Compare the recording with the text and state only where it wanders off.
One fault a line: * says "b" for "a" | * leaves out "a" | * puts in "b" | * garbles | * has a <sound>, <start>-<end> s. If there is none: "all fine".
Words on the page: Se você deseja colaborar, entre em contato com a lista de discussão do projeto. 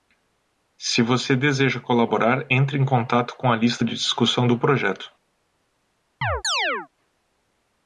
* has a chirp, 6.2-6.9 s